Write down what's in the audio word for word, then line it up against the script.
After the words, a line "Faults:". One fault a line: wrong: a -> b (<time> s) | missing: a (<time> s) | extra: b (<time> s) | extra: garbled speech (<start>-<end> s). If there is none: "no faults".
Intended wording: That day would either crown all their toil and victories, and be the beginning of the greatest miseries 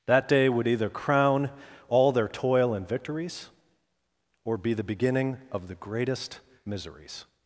That day would either crown all their toil and victories, or be the beginning of the greatest miseries
Faults:
wrong: and -> or (4.4 s)